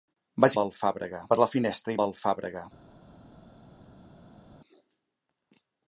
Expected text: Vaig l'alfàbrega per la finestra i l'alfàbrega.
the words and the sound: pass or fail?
pass